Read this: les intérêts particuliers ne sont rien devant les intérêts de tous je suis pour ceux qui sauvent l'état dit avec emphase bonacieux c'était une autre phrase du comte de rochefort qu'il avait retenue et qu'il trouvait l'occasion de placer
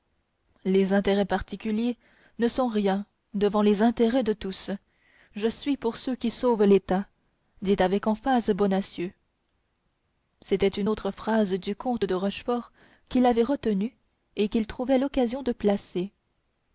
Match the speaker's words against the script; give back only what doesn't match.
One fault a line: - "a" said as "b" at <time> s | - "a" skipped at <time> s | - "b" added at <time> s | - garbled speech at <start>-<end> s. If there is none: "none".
none